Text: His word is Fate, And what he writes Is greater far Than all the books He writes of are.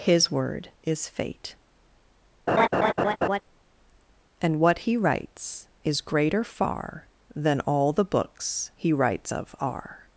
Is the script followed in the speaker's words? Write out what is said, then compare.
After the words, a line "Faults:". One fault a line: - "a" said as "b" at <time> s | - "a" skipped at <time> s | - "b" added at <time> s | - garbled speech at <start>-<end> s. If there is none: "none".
His word is Fate, And what he writes Is greater far Than all the books He writes of are.
Faults:
none